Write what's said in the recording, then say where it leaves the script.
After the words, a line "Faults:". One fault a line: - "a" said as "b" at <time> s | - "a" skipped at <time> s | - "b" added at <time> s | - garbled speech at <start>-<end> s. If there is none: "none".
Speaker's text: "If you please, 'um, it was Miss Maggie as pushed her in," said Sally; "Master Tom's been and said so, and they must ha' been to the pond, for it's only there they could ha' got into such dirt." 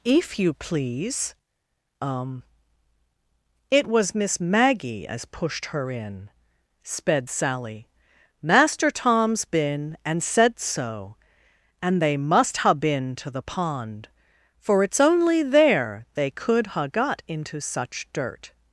"If you please, 'um, it was Miss Maggie as pushed her in," sped Sally; "Master Tom's been and said so, and they must ha' been to the pond, for it's only there they could ha' got into such dirt."
Faults:
- "said" said as "sped" at 6.8 s